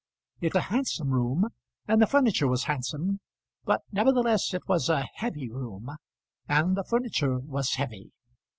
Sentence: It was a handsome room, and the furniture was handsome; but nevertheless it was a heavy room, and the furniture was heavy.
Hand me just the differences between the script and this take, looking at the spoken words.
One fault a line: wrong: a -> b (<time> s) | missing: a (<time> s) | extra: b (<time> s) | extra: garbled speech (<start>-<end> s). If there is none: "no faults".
missing: was (0.6 s)